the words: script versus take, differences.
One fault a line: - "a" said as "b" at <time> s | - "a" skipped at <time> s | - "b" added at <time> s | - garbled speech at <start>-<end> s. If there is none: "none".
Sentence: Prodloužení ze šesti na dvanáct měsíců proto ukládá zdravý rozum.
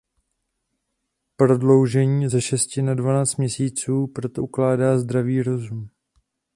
none